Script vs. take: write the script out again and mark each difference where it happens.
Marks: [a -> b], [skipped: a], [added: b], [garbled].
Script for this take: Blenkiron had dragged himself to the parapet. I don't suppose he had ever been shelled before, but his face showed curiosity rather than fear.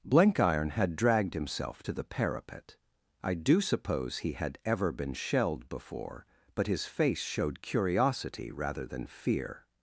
Blenkiron had dragged himself to the parapet. I [don't -> do] suppose he had ever been shelled before, but his face showed curiosity rather than fear.